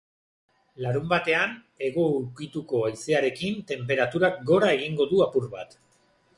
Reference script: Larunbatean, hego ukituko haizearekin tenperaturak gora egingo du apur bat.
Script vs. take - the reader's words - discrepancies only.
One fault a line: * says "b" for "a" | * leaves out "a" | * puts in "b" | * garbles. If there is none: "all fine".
all fine